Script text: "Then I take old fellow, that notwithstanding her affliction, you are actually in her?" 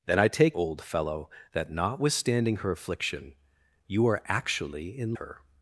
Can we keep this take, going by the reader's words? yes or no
yes